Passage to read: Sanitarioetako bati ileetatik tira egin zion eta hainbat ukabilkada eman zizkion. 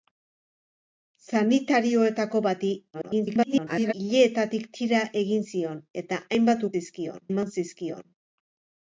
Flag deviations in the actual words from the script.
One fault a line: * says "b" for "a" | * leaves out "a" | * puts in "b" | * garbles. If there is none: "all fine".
* garbles
* says "zizkion" for "ukabilkada"